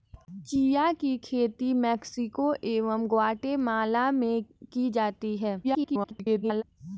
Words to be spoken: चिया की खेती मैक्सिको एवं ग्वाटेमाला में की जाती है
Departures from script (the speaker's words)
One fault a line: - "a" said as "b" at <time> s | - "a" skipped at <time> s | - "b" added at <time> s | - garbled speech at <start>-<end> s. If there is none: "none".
- garbled speech at 5.6-6.6 s